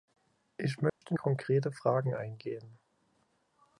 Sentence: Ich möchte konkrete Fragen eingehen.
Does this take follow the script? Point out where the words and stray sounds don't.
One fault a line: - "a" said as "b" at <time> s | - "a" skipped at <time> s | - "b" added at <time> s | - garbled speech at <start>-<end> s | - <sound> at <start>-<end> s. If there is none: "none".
- dropout at 0.9-1.0 s